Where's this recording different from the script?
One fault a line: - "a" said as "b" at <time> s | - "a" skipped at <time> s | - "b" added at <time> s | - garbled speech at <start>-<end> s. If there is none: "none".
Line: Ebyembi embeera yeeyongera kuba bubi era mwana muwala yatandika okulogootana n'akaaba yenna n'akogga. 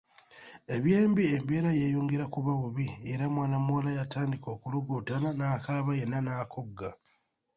none